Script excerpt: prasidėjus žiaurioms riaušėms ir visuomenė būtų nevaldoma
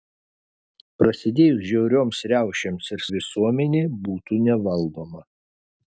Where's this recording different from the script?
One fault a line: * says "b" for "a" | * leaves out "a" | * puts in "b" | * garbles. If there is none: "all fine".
all fine